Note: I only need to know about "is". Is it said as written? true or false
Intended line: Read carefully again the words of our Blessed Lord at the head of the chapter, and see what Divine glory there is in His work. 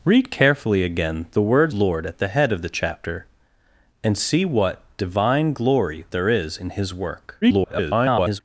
true